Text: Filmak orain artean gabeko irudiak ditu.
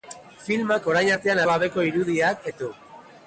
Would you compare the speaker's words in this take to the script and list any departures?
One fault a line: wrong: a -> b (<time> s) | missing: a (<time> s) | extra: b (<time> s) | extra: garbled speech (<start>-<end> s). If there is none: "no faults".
no faults